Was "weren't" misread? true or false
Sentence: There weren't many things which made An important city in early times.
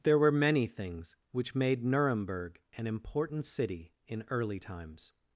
true